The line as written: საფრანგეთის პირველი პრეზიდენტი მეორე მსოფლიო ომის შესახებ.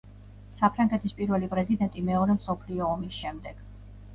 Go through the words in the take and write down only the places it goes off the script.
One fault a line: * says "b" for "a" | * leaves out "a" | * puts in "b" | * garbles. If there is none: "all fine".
* says "შემდეგ" for "შესახებ"